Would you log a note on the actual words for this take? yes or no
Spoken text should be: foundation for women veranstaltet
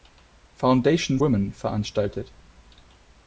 yes